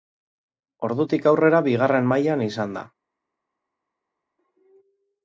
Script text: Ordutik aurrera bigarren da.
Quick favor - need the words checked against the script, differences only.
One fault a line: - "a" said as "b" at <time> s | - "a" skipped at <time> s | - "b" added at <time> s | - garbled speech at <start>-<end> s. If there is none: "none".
- "mailan izan" added at 2.1 s